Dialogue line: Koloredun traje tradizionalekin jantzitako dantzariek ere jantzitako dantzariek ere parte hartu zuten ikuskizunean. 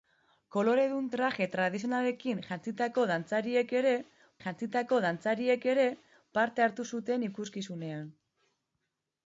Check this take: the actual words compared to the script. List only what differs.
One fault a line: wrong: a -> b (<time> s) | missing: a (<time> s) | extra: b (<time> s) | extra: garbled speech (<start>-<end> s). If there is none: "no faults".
no faults